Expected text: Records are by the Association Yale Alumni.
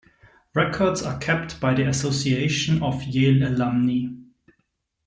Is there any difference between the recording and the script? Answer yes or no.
yes